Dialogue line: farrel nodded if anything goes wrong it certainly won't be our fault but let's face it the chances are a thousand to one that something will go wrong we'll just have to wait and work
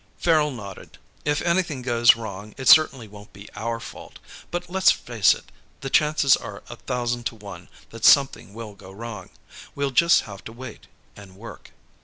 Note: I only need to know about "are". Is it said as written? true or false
true